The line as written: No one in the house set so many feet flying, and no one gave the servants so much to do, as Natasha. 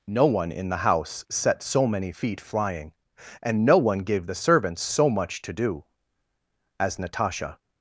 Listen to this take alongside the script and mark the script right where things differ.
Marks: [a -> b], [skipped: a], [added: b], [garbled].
No one in the house set so many feet flying, and no one gave the servants so much to do, as Natasha.